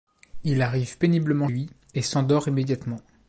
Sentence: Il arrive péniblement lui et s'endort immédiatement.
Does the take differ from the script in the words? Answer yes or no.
no